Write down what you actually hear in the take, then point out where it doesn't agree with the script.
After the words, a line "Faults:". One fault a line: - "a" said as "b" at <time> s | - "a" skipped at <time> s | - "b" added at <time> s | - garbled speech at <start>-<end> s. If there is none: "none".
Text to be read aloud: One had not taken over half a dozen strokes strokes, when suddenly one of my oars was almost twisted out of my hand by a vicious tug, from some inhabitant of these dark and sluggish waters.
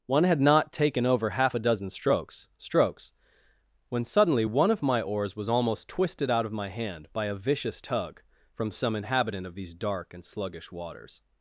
One had not taken over half a dozen strokes strokes, when suddenly one of my oars was almost twisted out of my hand by a vicious tug, from some inhabitant of these dark and sluggish waters.
Faults:
none